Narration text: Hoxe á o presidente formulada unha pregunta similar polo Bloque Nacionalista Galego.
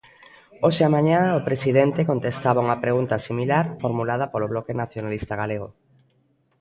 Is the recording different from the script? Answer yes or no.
yes